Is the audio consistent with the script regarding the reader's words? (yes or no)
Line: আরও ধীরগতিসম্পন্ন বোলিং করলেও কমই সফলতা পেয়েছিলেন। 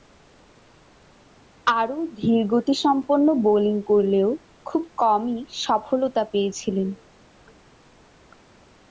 no